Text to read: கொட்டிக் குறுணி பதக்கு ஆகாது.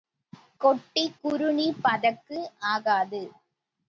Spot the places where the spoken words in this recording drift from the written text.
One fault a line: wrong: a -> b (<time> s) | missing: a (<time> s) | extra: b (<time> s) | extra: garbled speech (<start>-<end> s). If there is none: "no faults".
no faults